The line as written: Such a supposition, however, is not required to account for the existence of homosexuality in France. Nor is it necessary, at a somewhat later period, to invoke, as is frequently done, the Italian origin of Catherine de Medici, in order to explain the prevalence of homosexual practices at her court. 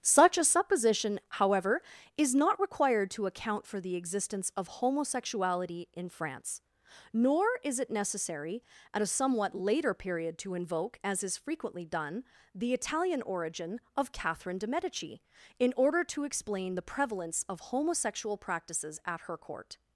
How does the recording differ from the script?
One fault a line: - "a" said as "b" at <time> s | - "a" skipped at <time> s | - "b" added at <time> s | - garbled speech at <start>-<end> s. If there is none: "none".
none